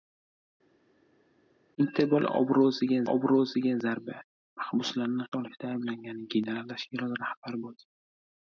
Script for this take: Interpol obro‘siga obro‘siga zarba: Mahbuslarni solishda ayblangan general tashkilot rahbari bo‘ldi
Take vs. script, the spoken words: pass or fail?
pass